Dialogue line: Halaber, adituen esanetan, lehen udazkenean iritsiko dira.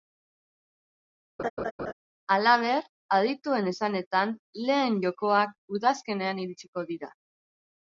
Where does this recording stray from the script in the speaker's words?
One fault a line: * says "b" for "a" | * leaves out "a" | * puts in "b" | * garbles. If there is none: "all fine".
* puts in "jokoak"